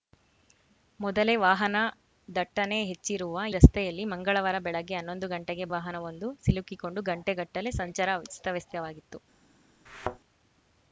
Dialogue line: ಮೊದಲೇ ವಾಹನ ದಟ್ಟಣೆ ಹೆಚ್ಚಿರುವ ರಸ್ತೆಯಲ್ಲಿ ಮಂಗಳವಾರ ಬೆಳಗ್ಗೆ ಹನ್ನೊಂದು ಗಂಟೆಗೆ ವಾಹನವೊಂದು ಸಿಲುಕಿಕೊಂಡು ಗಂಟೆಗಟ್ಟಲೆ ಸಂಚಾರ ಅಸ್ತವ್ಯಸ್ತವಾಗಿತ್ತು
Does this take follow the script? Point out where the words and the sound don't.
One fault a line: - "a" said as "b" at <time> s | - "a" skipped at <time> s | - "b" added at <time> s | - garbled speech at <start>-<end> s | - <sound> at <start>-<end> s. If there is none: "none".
- thud at 9.9-10.2 s